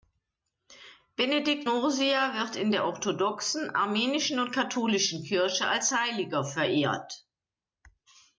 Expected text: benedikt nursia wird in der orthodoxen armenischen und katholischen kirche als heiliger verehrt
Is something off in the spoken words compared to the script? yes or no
no